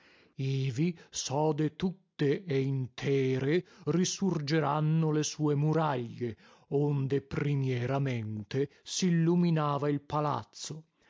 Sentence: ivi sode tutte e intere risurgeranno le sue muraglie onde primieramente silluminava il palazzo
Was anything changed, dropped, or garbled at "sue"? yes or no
no